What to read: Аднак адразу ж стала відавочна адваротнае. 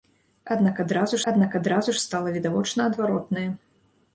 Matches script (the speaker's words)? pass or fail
fail